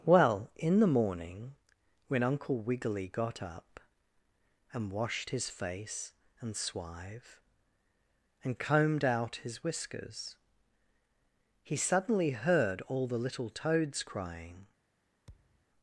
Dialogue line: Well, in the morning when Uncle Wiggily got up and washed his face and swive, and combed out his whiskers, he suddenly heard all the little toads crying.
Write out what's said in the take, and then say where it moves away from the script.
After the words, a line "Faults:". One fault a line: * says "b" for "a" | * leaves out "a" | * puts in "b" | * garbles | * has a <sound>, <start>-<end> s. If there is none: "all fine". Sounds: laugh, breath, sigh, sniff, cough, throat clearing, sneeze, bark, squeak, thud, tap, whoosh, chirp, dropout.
Well, in the morning when Uncle Wiggily got up and washed his face and swive, and combed out his whiskers, he suddenly heard all the little toads crying.
Faults:
* has a thud, 15.3-15.7 s